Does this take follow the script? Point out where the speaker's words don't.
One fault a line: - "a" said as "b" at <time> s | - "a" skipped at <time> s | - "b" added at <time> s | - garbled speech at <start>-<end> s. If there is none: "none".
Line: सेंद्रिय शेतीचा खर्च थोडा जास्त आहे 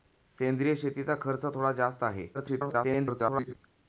- garbled speech at 2.3-3.5 s